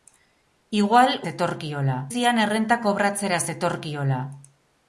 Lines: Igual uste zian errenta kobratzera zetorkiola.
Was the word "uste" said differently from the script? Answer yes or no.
yes